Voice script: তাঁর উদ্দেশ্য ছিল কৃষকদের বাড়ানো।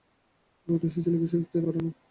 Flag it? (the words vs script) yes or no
no